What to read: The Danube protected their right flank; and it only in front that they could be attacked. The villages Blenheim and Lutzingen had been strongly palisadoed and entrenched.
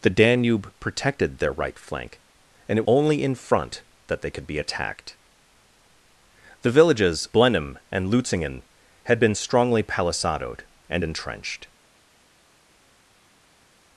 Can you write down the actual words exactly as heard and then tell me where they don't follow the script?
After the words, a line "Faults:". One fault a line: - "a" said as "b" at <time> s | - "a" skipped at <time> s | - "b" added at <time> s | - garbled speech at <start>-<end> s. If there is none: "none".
The Danube protected their right flank; and it only in front that they could be attacked. The villages Blenheim and Lutzingen had been strongly palisadoed and entrenched.
Faults:
none